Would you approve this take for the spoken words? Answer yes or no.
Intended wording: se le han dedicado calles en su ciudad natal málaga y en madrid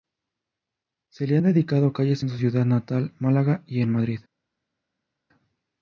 yes